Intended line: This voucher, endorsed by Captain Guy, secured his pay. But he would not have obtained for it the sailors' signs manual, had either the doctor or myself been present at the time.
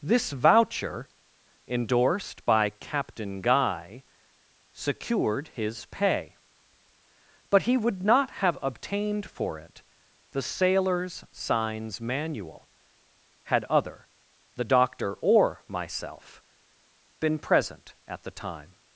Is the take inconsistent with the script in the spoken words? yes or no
yes